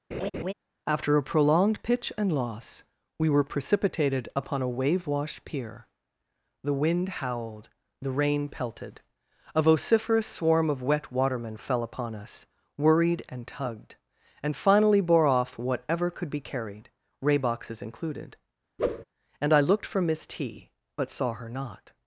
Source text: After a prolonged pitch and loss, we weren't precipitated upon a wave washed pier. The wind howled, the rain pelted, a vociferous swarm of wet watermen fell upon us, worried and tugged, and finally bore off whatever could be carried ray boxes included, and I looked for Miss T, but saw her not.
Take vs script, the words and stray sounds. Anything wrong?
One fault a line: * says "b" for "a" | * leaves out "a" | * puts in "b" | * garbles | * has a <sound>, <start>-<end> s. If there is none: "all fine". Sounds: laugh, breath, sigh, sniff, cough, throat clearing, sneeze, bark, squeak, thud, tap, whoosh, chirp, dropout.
* has a laugh, 0.1-0.5 s
* says "were" for "weren't"
* has a whoosh, 18.8-19.0 s